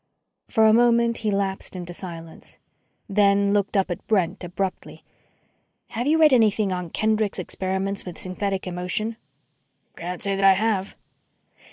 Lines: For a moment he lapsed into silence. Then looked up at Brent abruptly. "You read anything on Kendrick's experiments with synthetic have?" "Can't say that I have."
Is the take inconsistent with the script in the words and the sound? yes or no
yes